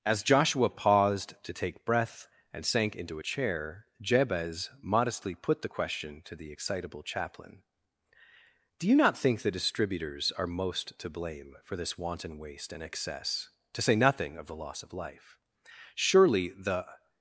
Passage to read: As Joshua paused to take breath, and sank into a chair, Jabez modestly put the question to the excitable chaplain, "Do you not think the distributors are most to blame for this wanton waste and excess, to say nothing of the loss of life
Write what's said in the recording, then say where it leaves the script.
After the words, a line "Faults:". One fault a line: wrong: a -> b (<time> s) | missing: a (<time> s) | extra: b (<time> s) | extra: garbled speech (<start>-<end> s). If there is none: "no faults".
As Joshua paused to take breath, and sank into a chair, Jabez modestly put the question to the excitable chaplain, "Do you not think the distributors are most to blame for this wanton waste and excess, to say nothing of the loss of life Surely the
Faults:
extra: Surely the (15.9 s)